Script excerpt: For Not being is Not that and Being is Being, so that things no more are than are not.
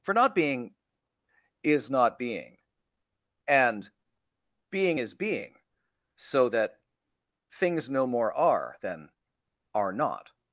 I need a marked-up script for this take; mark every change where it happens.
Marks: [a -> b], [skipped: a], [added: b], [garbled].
For Not being is Not [that -> being] and Being is Being, so that things no more are than are not.